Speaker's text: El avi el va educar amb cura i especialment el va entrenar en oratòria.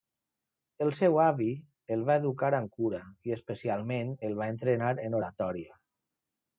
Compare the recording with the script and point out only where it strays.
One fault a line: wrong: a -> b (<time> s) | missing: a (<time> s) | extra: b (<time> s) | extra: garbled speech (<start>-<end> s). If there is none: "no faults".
extra: seu (1.0 s)